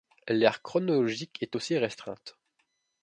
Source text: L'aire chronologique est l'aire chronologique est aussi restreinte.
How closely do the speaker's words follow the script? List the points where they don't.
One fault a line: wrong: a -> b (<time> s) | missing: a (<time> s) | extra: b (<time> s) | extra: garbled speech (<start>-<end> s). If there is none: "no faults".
missing: l'aire chronologique est (1.6 s)